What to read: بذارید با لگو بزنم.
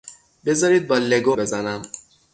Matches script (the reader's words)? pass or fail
pass